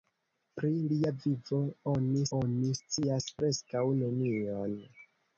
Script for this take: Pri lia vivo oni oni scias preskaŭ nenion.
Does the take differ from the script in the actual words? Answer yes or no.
no